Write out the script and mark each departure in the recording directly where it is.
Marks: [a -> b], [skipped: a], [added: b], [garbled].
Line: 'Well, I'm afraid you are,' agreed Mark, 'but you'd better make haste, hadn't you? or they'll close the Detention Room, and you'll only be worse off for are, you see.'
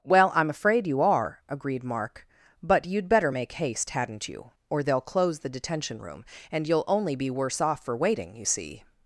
'Well, I'm afraid you are,' agreed Mark, 'but you'd better make haste, hadn't you? or they'll close the Detention Room, and you'll only be worse off for [are, -> waiting] you see.'